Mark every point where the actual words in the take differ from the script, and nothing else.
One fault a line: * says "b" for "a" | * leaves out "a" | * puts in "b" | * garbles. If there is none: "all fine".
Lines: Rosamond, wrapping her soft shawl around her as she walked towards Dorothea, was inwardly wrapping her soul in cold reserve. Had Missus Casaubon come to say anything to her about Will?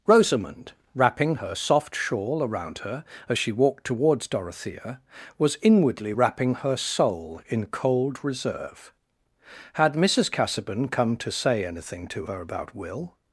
all fine